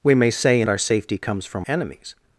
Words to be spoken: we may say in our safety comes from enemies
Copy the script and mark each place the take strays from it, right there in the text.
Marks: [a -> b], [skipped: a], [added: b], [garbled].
we may say in our safety comes from enemies